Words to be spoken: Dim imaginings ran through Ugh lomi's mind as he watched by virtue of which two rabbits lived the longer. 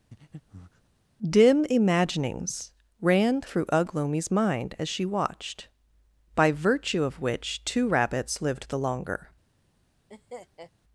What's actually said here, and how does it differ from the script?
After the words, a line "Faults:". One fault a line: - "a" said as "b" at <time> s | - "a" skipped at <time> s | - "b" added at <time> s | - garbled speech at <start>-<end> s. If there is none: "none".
Dim imaginings ran through Ugh lomi's mind as she watched by virtue of which two rabbits lived the longer.
Faults:
- "he" said as "she" at 4.9 s